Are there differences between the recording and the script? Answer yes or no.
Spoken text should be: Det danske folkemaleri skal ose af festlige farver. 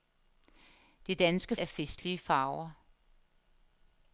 yes